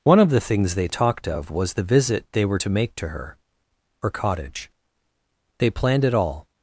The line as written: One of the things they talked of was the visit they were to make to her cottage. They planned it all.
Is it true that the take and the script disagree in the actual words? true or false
true